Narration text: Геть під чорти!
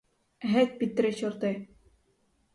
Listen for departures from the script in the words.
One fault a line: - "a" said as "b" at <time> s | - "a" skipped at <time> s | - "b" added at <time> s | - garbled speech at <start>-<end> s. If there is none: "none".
- "три" added at 0.9 s